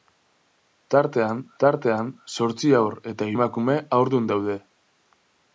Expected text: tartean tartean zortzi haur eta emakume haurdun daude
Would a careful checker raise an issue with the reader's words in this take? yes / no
no